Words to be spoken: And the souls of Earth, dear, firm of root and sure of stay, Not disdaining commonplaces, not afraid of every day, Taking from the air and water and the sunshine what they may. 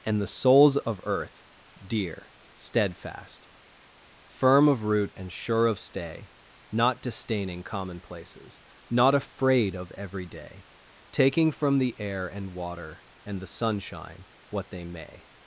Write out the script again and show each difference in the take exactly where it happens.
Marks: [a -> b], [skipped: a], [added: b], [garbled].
And the souls of Earth, dear, [added: steadfast] firm of root and sure of stay, Not disdaining commonplaces, not afraid of every day, Taking from the air and water and the sunshine what they may.